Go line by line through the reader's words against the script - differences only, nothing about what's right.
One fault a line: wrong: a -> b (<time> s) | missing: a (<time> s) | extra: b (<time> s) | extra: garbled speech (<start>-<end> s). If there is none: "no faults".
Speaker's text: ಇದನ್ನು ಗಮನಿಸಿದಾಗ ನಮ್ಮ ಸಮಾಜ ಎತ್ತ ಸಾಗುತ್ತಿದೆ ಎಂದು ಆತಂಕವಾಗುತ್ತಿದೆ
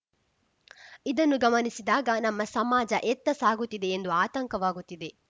no faults